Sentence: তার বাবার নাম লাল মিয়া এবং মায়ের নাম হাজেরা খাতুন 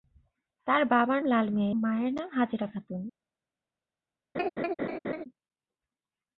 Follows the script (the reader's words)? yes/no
no